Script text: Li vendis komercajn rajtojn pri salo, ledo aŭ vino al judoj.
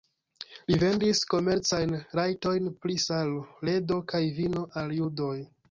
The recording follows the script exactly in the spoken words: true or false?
false